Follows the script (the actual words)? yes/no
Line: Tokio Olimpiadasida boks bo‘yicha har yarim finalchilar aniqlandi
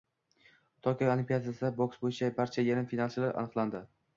no